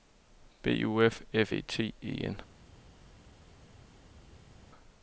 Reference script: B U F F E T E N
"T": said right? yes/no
yes